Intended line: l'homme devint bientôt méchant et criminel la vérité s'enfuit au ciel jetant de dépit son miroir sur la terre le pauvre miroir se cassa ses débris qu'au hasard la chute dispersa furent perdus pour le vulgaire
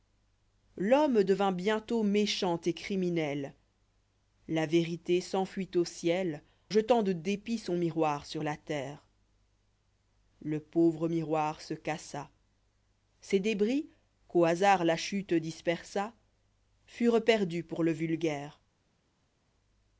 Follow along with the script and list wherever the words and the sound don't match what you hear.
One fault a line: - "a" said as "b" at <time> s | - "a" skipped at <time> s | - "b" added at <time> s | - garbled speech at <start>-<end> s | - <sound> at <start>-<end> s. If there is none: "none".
none